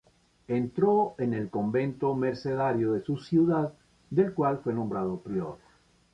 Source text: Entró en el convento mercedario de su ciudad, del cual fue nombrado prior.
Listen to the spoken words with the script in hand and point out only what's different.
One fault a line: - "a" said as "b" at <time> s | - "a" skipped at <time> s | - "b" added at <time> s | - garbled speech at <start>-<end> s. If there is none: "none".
none